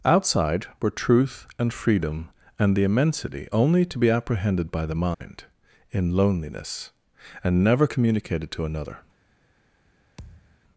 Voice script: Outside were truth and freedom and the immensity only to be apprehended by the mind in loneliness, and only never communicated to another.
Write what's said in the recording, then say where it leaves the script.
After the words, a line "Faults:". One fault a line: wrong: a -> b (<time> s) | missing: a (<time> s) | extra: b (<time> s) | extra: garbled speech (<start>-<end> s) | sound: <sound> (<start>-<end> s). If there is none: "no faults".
Outside were truth and freedom and the immensity only to be apprehended by the mind in loneliness, and never communicated to another.
Faults:
sound: dropout (5.1-5.2 s)
missing: only (7.6 s)
sound: thud (10.2-10.6 s)